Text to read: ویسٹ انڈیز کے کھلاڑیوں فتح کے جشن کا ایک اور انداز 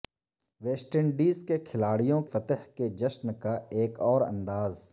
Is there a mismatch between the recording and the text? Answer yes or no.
no